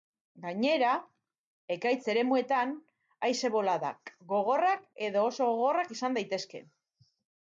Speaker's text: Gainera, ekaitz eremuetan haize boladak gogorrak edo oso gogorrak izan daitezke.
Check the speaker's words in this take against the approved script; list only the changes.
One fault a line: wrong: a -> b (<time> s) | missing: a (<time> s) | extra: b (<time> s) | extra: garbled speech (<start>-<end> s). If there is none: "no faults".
no faults